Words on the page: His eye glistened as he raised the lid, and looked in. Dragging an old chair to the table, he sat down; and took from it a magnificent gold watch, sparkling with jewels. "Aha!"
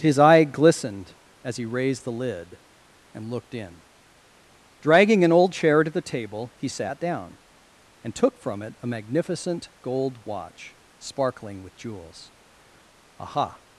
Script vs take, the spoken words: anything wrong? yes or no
no